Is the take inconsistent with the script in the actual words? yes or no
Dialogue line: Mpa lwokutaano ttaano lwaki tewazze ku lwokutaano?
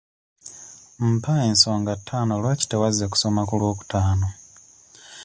yes